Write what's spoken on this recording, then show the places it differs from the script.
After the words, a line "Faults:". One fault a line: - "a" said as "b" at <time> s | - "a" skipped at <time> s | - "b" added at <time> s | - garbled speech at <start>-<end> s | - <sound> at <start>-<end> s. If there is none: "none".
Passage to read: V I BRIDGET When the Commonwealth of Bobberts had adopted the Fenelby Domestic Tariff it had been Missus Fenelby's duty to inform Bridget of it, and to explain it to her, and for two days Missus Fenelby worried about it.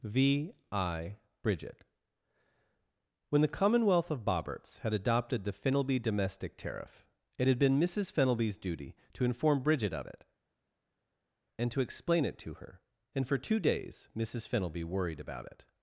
V I BRIDGET When the Commonwealth of Bobberts had adopted the Fenelby Domestic Tariff it had been Missus Fenelby's duty to inform Bridget of it, and to explain it to her, and for two days Missus Fenelby worried about it.
Faults:
none